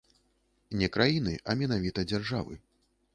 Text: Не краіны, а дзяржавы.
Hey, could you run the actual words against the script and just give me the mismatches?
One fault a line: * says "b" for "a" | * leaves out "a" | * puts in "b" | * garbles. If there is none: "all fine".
* puts in "менавіта"